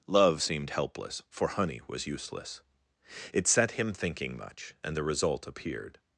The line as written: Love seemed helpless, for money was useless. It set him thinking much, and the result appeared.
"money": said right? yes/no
no